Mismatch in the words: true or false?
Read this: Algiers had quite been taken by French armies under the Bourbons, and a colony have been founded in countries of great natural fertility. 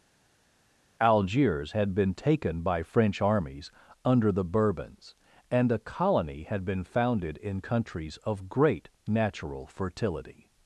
true